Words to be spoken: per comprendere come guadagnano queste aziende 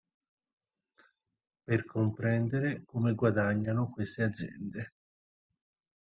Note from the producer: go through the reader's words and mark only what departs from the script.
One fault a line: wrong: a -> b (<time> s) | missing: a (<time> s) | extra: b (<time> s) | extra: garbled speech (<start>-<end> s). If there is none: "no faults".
no faults